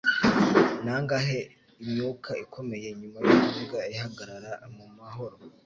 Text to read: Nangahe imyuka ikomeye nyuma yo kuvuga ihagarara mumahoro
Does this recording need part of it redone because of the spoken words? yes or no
no